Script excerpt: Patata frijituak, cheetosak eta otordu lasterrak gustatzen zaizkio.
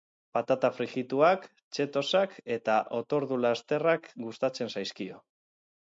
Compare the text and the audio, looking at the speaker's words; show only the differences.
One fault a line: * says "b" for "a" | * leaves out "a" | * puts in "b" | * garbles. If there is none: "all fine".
all fine